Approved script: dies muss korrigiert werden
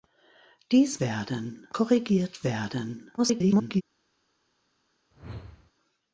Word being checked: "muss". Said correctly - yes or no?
no